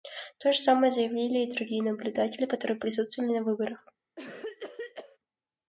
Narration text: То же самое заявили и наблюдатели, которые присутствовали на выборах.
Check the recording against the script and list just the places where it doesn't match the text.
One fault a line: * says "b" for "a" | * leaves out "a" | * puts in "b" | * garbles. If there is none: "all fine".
* puts in "другие"